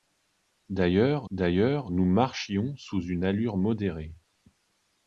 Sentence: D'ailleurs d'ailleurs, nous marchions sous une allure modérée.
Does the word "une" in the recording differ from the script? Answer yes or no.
no